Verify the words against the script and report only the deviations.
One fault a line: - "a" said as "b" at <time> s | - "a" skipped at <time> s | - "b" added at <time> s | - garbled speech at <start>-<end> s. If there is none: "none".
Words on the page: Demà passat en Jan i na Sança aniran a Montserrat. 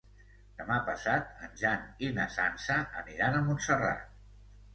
none